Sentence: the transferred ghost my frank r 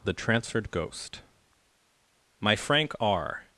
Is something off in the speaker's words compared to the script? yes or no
no